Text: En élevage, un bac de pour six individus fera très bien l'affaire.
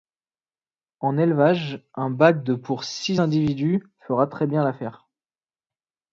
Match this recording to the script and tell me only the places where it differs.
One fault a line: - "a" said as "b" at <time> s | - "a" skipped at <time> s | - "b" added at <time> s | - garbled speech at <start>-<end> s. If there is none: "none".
none